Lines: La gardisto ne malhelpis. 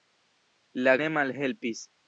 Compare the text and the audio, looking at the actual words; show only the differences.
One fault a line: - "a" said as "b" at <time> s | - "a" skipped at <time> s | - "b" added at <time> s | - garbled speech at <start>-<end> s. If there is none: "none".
- "gardisto" skipped at 0.9 s